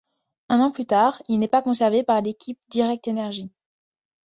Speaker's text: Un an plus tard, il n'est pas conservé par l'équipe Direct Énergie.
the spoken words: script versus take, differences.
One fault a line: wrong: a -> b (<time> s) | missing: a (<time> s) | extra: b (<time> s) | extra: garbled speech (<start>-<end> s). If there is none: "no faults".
no faults